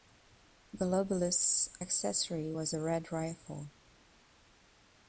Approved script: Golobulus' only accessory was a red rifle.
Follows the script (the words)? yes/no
no